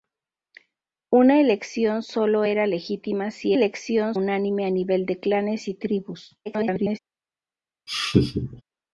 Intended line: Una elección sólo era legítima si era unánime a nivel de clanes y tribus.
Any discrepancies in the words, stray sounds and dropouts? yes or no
yes